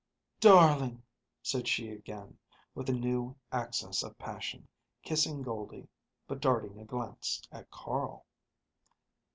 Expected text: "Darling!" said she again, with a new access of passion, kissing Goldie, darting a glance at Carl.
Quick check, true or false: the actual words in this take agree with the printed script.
false